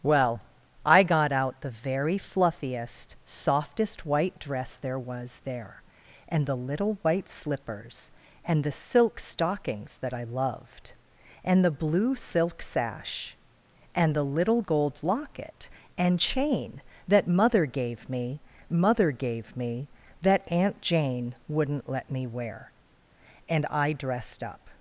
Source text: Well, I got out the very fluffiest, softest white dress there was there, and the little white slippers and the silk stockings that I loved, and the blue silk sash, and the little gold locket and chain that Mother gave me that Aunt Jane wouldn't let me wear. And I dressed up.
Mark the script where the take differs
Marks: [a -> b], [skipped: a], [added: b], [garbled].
Well, I got out the very fluffiest, softest white dress there was there, and the little white slippers and the silk stockings that I loved, and the blue silk sash, and the little gold locket and chain that Mother gave me [added: Mother gave me] that Aunt Jane wouldn't let me wear. And I dressed up.